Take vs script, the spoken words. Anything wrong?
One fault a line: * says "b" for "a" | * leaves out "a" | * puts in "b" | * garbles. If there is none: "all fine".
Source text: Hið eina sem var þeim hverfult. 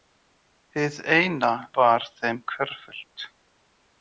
* leaves out "sem"